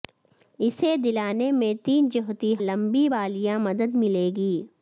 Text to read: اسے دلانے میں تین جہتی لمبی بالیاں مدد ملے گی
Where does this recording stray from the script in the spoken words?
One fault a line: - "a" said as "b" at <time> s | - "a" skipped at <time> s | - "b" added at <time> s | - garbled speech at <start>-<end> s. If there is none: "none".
none